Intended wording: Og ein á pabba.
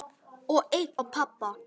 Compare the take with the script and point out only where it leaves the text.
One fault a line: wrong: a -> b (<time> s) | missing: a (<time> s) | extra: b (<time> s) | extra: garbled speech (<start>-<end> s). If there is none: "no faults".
no faults